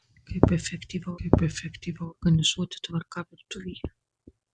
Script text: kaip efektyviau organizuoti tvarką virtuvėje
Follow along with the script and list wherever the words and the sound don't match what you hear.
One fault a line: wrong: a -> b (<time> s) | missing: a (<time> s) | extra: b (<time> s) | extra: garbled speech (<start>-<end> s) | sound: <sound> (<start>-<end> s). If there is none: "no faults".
extra: kaip efektyviau (1.2 s)